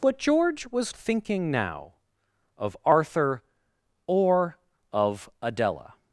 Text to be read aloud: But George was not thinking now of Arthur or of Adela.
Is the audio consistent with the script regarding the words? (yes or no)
no